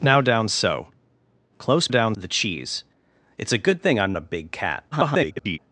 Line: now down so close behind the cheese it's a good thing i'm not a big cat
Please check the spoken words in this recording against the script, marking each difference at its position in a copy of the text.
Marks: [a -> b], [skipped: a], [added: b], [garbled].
now down so close [behind -> down] the cheese it's a good thing i'm [skipped: not] a big cat [garbled]